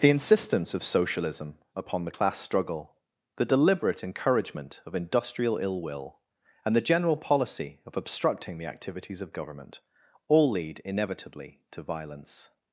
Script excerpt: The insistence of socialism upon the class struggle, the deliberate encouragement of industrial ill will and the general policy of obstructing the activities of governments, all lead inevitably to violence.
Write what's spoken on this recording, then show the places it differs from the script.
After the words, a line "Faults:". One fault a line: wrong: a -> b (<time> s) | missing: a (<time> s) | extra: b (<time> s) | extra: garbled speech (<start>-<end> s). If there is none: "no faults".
The insistence of socialism upon the class struggle, the deliberate encouragement of industrial ill will and the general policy of obstructing the activities of government, all lead inevitably to violence.
Faults:
wrong: governments -> government (9.3 s)